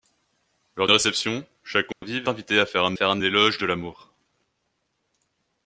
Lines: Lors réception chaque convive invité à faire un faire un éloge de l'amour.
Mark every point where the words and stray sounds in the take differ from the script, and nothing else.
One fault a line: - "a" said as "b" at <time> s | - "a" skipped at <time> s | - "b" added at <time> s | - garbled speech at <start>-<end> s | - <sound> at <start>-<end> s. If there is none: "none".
- dropout at 1.9-2.0 s